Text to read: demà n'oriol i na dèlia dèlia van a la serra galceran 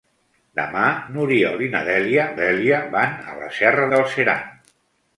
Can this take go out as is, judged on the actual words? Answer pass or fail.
pass